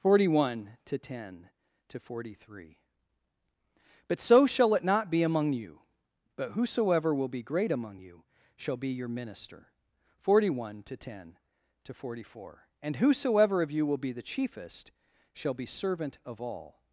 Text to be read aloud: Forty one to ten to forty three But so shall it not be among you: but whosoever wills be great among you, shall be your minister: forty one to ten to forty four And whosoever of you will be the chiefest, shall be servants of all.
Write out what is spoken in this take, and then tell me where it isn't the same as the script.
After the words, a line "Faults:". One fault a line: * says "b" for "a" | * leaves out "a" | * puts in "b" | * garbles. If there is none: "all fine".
Forty one to ten to forty three But so shall it not be among you: but whosoever will be great among you, shall be your minister: forty one to ten to forty four And whosoever of you will be the chiefest, shall be servant of all.
Faults:
* says "will" for "wills"
* says "servant" for "servants"